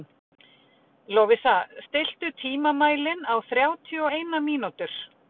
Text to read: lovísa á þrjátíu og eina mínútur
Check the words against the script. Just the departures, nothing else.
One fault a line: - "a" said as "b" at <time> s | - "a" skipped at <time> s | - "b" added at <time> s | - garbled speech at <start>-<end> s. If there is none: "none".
- "stilltu tímamælinn" added at 1.9 s